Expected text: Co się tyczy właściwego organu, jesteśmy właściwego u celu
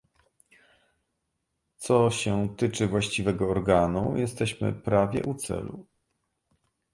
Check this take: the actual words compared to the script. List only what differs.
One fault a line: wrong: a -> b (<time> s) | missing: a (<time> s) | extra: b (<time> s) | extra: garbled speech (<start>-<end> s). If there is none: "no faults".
wrong: właściwego -> prawie (4.7 s)